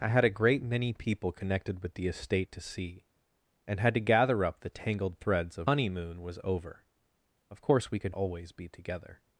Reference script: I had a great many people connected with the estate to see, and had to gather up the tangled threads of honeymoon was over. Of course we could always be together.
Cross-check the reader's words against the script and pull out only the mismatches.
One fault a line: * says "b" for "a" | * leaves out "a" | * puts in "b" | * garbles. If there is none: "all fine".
all fine